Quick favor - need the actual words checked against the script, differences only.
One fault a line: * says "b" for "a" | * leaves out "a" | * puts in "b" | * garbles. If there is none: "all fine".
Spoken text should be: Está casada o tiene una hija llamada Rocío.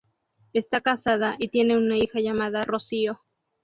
* says "y" for "o"